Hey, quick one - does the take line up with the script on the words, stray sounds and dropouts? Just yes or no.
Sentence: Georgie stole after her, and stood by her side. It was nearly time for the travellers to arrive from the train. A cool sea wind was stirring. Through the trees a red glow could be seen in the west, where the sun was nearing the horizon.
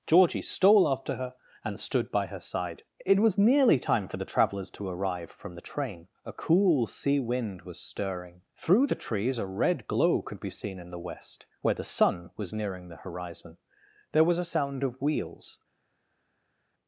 no